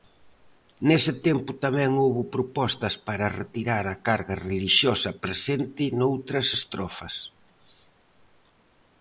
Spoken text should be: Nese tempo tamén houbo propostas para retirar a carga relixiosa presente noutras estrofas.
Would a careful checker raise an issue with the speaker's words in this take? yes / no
no